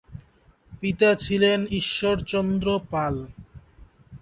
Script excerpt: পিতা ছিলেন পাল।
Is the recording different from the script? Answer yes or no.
yes